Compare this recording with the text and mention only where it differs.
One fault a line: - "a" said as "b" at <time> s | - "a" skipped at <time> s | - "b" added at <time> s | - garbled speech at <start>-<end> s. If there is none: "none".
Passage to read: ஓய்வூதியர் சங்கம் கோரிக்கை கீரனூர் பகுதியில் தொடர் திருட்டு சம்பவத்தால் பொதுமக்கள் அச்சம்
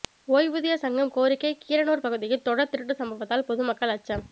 none